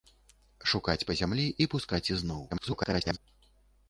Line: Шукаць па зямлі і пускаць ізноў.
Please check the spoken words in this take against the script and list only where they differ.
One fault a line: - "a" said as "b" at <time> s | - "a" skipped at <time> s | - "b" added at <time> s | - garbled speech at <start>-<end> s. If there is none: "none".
- garbled speech at 2.5-3.2 s